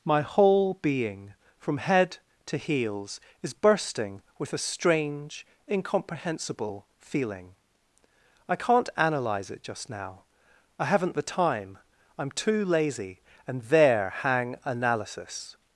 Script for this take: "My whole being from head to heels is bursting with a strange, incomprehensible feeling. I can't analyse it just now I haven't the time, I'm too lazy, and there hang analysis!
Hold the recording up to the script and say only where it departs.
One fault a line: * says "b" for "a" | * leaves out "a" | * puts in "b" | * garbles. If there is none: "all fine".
all fine